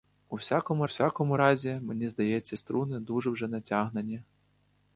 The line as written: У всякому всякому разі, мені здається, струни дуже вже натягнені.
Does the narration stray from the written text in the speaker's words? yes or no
no